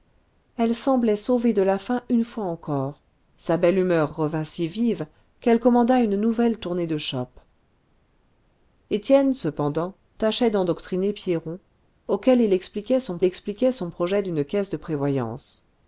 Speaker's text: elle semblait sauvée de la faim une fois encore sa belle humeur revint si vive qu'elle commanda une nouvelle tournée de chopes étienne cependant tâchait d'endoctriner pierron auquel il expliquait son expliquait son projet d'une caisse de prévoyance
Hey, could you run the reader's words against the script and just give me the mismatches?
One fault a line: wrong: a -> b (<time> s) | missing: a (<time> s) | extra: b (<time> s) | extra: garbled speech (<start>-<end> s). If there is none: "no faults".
no faults